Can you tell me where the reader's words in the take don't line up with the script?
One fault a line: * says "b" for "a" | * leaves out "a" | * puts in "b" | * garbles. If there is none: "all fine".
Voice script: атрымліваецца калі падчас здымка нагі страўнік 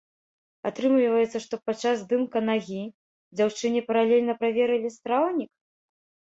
* says "што" for "калі"
* puts in "дзяўчыне паралельна праверылі"